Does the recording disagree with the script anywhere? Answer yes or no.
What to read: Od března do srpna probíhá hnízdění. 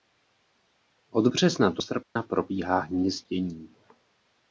no